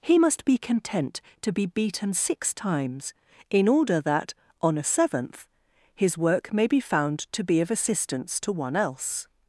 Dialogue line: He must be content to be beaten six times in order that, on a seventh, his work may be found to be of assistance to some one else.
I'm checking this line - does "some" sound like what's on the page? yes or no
no